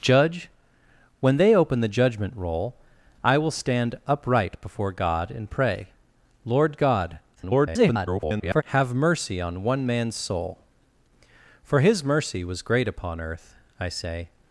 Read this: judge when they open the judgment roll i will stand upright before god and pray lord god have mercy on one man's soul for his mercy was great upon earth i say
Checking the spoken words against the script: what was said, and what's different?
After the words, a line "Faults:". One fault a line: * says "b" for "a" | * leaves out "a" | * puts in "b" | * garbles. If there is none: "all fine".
judge when they open the judgment roll i will stand upright before god and pray lord god [garbled] have mercy on one man's soul for his mercy was great upon earth i say
Faults:
* garbles